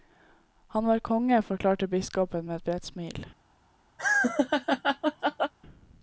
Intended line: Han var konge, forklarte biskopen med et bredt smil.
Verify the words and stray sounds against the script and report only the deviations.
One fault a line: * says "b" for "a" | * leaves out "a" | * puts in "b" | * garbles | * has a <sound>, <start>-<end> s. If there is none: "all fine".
* has a laugh, 4.0-5.5 s